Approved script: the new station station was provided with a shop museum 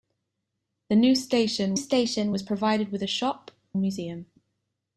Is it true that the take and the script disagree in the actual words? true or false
false